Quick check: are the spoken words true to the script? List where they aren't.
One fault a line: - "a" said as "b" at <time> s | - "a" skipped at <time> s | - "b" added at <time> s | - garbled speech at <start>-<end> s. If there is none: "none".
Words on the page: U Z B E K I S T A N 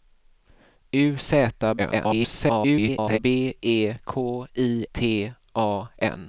- garbled speech at 1.8-3.2 s
- "S" skipped at 4.8 s